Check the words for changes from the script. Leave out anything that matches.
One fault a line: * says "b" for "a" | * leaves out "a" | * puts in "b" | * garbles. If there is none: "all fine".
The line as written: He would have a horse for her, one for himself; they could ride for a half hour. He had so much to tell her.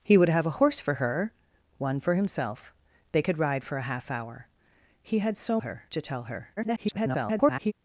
* says "her" for "much"
* garbles